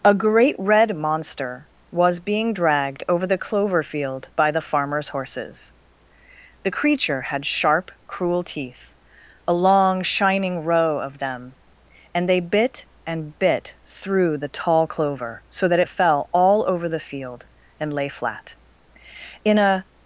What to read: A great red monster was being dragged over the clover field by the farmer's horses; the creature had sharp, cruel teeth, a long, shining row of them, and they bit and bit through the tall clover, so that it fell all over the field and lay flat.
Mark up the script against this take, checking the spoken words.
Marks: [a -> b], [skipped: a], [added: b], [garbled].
A great red monster was being dragged over the clover field by the farmer's horses; the creature had sharp, cruel teeth, a long, shining row of them, and they bit and bit through the tall clover, so that it fell all over the field and lay flat. [added: In a]